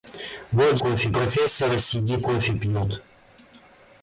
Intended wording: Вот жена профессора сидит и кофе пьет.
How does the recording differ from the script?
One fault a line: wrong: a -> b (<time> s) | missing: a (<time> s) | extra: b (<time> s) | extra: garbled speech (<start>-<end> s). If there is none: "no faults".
wrong: жена -> кофе (0.8 s)
missing: и (2.3 s)